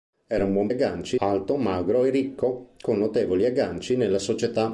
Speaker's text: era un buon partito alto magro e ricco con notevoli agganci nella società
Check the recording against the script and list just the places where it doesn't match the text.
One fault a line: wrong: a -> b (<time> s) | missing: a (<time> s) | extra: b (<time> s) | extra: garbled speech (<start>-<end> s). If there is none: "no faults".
wrong: partito -> agganci (0.7 s)